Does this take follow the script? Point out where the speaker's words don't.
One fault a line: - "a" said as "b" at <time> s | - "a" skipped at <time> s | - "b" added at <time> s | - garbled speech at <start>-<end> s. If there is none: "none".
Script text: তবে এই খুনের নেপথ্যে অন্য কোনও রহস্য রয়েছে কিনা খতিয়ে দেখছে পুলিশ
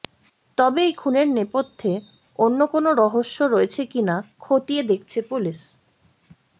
none